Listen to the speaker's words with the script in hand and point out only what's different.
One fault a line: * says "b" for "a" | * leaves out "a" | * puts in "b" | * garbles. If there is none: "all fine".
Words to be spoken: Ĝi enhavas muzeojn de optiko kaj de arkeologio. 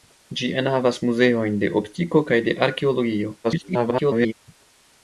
* garbles